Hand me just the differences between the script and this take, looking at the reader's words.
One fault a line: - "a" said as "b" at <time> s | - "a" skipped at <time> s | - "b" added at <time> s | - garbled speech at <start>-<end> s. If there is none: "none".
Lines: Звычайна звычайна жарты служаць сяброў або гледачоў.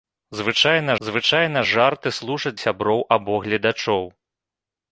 none